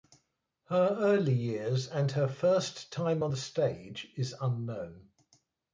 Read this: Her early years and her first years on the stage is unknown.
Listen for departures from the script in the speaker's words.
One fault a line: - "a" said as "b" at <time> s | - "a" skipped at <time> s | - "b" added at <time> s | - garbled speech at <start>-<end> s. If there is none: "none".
- "years" said as "time" at 2.9 s